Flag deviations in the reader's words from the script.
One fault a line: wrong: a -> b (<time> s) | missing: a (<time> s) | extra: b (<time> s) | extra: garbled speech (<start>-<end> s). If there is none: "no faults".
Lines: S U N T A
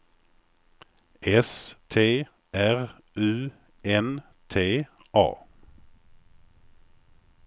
extra: T R (1.9 s)